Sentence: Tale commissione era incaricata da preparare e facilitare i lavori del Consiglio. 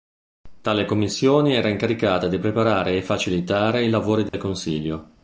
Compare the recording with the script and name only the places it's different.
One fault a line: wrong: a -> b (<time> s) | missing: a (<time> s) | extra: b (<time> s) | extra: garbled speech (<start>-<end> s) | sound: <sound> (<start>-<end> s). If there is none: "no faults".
wrong: da -> di (2.3 s)
sound: dropout (4.3-4.3 s)